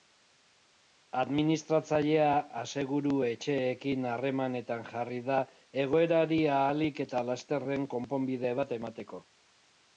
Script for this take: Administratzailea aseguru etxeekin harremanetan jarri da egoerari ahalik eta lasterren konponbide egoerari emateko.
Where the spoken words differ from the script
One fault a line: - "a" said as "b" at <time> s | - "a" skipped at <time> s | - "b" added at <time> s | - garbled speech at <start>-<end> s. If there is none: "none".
- "egoerari" said as "bat" at 8.6 s